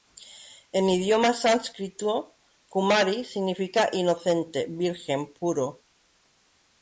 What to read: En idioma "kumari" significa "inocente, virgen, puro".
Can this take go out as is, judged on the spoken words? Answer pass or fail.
fail